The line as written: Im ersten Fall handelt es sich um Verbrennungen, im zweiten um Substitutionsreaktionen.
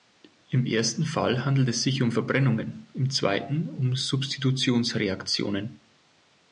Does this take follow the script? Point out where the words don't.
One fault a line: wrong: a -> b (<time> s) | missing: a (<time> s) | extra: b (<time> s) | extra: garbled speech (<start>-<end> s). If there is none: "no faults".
no faults